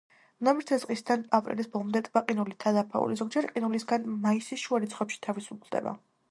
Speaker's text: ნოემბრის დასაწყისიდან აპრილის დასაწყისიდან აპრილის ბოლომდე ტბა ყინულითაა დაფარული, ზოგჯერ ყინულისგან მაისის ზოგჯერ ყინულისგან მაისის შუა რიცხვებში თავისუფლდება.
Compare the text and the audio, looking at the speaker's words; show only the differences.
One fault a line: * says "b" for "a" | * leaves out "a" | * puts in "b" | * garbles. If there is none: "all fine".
* leaves out "დასაწყისიდან აპრილის"
* leaves out "ზოგჯერ ყინულისგან მაისის"